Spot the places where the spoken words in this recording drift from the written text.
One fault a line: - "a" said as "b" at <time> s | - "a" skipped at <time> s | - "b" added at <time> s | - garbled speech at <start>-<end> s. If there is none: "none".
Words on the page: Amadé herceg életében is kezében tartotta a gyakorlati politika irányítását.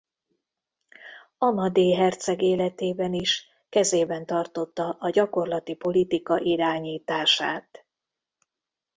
none